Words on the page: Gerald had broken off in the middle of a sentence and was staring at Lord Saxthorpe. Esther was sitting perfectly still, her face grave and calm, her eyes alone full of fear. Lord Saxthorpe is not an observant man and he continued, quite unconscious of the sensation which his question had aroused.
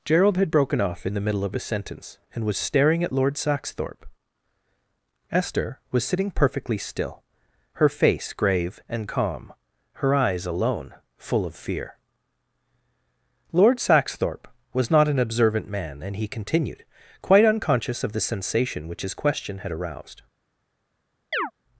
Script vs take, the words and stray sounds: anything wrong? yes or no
yes